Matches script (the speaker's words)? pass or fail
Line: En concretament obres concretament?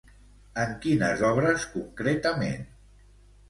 fail